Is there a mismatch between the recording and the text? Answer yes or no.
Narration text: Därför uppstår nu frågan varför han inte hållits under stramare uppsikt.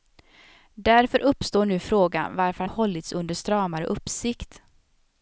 yes